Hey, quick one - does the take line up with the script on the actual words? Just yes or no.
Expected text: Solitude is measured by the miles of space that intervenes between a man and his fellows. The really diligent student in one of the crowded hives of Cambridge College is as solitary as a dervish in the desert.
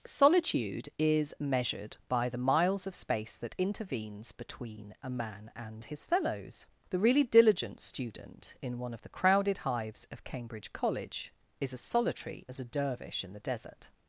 yes